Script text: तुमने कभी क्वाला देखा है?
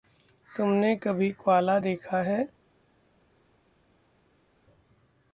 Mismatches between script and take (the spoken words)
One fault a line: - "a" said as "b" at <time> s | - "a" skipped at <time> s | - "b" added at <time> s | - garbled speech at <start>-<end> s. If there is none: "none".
none